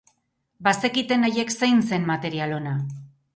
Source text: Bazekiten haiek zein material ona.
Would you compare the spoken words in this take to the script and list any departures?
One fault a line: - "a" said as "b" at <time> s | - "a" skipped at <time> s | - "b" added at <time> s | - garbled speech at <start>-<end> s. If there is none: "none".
- "zen" added at 1.9 s